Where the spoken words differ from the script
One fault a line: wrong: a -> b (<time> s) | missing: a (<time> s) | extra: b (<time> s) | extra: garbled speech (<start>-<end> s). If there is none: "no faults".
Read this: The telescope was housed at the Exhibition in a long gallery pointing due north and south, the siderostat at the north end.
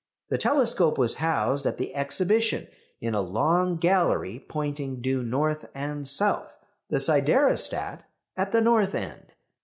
no faults